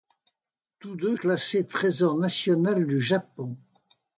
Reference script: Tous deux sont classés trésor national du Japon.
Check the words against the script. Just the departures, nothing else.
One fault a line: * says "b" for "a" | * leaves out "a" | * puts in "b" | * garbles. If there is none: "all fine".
* leaves out "sont"